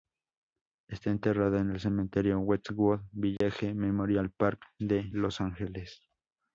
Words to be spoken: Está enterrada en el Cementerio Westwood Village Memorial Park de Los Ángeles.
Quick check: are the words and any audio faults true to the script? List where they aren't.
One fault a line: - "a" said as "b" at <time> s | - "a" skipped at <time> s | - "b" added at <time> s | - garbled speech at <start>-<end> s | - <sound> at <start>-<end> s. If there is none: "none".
- dropout at 3.4-3.4 s